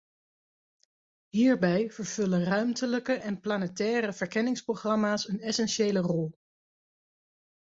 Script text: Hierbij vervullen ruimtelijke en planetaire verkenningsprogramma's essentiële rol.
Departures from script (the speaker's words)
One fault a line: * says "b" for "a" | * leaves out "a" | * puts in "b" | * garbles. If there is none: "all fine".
* puts in "een"